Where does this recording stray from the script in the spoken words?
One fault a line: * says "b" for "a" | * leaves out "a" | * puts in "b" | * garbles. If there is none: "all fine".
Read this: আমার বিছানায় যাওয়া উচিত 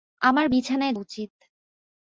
* leaves out "যাওয়া"